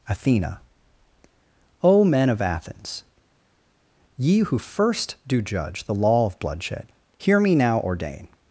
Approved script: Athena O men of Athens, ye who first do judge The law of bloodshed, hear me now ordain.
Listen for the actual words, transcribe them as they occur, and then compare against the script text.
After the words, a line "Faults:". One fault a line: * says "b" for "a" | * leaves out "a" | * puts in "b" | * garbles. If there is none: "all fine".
Athena O men of Athens, ye who first do judge The law of bloodshed, hear me now ordain.
Faults:
all fine